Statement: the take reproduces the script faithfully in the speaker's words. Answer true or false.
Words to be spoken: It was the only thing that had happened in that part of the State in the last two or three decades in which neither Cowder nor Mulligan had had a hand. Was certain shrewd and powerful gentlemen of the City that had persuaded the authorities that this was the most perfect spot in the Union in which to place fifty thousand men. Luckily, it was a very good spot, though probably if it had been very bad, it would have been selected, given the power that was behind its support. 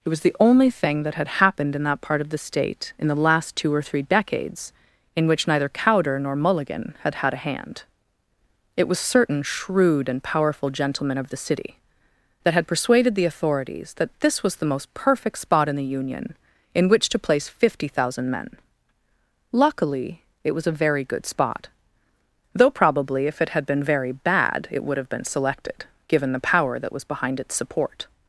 false